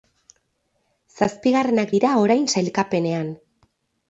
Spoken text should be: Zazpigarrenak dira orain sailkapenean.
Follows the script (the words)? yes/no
yes